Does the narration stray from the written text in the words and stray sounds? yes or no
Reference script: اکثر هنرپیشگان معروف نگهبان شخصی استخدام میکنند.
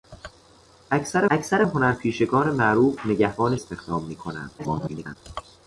yes